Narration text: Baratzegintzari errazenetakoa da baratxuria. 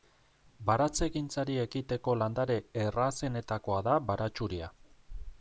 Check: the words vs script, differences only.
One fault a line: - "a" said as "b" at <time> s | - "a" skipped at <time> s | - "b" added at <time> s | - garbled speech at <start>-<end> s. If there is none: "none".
- "ekiteko landare" added at 1.6 s